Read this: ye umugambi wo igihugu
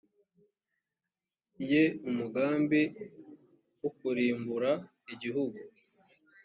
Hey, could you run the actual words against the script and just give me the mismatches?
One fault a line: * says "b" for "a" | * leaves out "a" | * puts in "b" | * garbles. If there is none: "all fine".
* puts in "kurimbura"